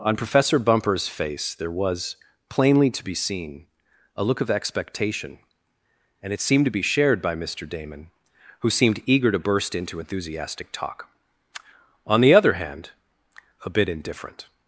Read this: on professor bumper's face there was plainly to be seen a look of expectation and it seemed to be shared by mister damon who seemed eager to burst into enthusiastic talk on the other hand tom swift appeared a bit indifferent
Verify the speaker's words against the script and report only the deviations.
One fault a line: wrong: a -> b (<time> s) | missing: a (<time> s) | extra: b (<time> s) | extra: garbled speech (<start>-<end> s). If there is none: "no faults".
missing: tom swift appeared (12.9 s)